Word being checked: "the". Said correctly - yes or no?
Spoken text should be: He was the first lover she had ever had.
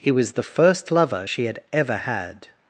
yes